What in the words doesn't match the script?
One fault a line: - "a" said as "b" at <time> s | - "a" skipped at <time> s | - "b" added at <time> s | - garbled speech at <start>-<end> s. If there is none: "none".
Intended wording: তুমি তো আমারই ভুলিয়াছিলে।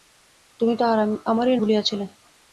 none